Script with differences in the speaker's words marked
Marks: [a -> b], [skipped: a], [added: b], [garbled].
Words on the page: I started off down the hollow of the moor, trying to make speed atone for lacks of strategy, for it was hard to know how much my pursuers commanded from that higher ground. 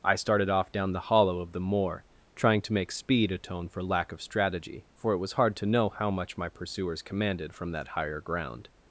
I started off down the hollow of the moor, trying to make speed atone for [lacks -> lack] of strategy, for it was hard to know how much my pursuers commanded from that higher ground.